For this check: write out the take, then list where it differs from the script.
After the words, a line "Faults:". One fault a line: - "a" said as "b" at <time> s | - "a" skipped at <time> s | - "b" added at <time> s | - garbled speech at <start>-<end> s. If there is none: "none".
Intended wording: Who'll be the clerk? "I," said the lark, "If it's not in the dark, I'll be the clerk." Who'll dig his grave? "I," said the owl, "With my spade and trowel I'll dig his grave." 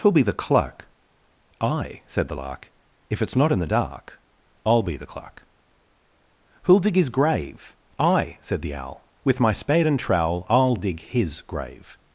Who'll be the clerk? "I," said the lark, "If it's not in the dark, I'll be the clerk." Who'll dig his grave? "I," said the owl, "With my spade and trowel I'll dig his grave."
Faults:
none